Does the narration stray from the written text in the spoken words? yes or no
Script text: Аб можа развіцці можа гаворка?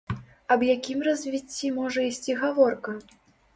yes